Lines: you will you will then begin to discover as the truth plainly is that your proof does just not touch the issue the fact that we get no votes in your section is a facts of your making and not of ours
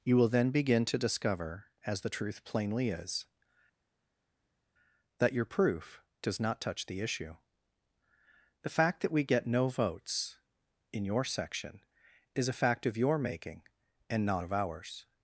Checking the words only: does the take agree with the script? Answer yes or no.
no